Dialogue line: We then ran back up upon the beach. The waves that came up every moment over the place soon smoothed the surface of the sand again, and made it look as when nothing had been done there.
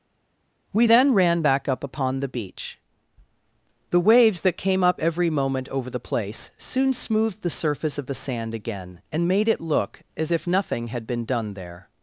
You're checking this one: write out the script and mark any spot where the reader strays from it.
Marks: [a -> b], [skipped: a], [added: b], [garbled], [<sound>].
We then ran back up upon the beach. The waves that came up every moment over the place soon smoothed the surface of the sand again, and made it look as [when -> if] nothing had been done there.